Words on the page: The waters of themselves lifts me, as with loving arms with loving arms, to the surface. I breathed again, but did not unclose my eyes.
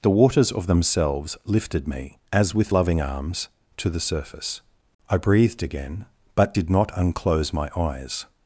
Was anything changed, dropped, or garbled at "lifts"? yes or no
yes